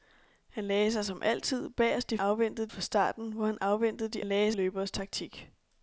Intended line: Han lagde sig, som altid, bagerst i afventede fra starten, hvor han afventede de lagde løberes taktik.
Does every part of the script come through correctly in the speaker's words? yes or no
yes